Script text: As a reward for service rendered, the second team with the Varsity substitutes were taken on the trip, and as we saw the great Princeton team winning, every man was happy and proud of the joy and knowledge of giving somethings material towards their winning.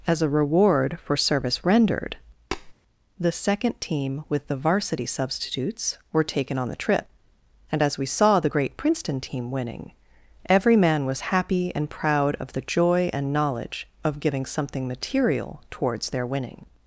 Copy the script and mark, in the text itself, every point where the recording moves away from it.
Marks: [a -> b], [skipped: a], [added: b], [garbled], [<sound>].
As a reward for service rendered, [tap] the second team with the Varsity substitutes were taken on the trip, and as we saw the great Princeton team winning, every man was happy and proud of the joy and knowledge of giving [somethings -> something] material towards their winning.